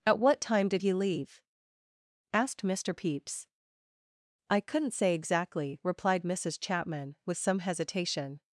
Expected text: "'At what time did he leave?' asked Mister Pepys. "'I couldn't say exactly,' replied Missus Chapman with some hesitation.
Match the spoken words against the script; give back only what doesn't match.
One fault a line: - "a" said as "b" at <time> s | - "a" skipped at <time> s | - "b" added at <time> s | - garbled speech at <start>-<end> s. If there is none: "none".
none